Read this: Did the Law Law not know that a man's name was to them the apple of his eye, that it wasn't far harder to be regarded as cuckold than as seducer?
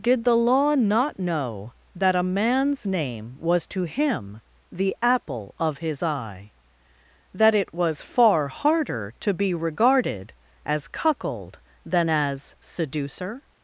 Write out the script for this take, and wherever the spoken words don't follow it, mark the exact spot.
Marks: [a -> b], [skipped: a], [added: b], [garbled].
Did the Law [skipped: Law] not know that a man's name was to [them -> him] the apple of his eye, that it [wasn't -> was] far harder to be regarded as cuckold than as seducer?